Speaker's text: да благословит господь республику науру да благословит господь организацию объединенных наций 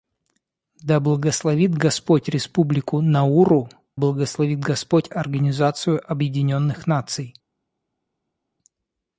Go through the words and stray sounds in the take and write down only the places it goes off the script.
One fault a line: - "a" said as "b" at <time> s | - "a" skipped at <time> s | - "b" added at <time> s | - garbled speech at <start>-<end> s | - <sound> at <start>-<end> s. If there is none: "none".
- "да" skipped at 3.7 s